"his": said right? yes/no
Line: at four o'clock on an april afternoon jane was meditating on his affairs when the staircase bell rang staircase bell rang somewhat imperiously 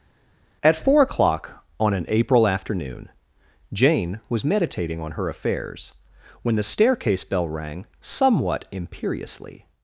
no